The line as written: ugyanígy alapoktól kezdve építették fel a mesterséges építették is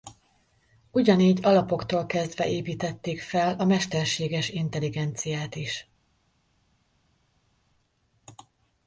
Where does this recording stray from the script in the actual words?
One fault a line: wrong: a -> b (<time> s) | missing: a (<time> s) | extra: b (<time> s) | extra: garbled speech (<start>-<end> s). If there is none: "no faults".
wrong: építették -> intelligenciát (4.5 s)